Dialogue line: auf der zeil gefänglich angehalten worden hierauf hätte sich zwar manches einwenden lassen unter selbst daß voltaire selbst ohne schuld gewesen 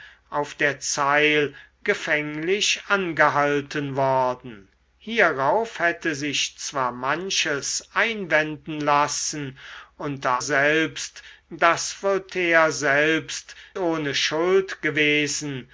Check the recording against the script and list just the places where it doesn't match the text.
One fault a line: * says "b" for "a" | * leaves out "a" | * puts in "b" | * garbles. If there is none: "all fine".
all fine